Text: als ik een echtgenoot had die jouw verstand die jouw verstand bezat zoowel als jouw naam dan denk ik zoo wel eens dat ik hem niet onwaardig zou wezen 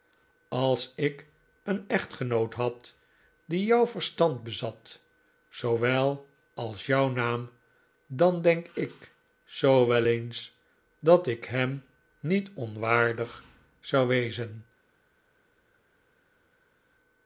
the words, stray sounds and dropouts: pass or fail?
fail